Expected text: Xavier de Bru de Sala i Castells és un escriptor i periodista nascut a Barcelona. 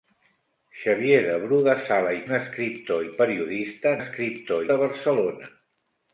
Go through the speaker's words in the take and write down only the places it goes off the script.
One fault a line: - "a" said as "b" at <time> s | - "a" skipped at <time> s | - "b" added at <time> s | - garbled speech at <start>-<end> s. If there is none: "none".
- "Castells és" skipped at 2.2 s
- "nascut" said as "escriptor" at 4.0 s